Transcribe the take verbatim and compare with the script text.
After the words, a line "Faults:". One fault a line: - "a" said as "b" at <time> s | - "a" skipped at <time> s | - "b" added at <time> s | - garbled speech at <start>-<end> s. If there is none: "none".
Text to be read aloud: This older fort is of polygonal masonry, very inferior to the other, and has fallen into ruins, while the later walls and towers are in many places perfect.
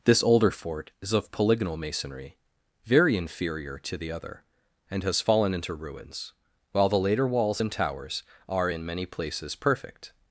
This older fort is of polygonal masonry, very inferior to the other, and has fallen into ruins, while the later walls and towers are in many places perfect.
Faults:
none